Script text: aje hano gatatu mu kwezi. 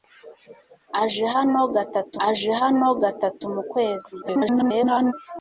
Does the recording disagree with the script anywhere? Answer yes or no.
yes